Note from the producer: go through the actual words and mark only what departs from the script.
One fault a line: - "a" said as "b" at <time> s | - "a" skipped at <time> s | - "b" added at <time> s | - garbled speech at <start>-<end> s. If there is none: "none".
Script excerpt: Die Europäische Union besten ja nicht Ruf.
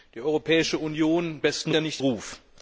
none